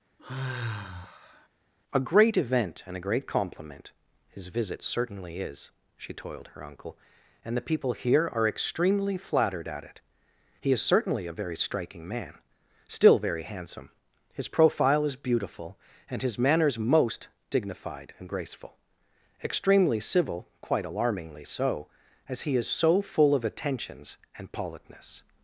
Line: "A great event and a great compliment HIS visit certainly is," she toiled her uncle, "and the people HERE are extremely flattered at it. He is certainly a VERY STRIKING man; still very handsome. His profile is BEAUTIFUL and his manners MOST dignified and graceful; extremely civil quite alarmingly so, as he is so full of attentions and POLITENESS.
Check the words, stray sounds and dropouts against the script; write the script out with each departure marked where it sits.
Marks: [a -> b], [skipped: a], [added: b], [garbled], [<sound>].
[sigh] "A great event and a great compliment HIS visit certainly is," she toiled her uncle, "and the people HERE are extremely flattered at it. He is certainly a VERY STRIKING man; still very handsome. His profile is BEAUTIFUL and his manners MOST dignified and graceful; extremely civil quite alarmingly so, as he is so full of attentions and POLITENESS.